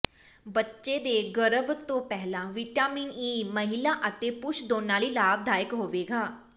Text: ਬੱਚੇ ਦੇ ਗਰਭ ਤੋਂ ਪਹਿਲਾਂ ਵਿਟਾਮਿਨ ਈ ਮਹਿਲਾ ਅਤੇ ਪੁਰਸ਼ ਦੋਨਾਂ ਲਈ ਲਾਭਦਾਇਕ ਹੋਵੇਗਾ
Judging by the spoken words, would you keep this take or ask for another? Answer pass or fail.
pass